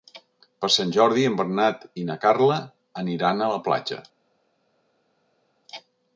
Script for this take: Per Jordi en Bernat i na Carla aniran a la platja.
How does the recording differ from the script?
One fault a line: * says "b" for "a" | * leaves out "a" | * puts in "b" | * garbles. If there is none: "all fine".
* puts in "Sant"